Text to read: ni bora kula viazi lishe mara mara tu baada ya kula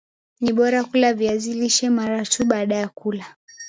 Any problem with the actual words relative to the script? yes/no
yes